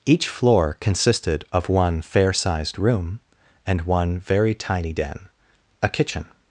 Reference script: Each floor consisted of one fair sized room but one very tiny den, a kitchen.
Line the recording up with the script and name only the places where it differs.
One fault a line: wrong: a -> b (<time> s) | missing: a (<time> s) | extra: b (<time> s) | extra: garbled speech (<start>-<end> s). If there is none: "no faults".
wrong: but -> and (3.7 s)